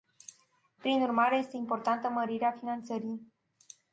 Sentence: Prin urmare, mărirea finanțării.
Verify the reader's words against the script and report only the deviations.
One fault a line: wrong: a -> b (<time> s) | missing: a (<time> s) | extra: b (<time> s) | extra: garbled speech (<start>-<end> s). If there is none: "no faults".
extra: este importantă (1.4 s)